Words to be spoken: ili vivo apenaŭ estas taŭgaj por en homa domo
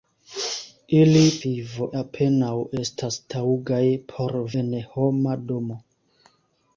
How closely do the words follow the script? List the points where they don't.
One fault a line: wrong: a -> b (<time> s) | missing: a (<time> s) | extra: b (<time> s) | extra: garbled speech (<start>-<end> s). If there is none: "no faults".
no faults